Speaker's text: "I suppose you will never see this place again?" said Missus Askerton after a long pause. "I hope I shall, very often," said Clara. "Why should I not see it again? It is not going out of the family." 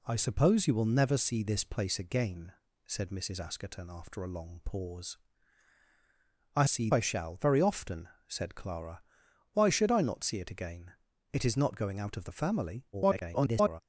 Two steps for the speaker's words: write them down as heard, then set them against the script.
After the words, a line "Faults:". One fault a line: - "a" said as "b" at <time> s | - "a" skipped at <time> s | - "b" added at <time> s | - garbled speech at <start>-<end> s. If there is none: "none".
"I suppose you will never see this place again?" said Missus Askerton after a long pause. "I see I shall, very often," said Clara. "Why should I not see it again? It is not going out of the family." [garbled]
Faults:
- "hope" said as "see" at 6.6 s
- garbled speech at 12.9-13.8 s